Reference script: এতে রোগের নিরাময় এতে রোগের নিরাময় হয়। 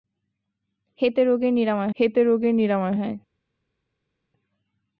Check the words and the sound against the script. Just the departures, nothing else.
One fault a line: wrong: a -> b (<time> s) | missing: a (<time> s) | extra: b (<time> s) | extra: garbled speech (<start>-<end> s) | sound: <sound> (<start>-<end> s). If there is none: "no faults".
no faults